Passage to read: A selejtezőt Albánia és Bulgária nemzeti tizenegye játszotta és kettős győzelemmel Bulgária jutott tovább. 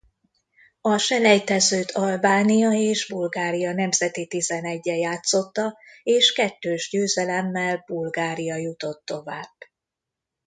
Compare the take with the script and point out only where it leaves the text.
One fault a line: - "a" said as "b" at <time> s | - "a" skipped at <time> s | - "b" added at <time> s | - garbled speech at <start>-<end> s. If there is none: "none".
none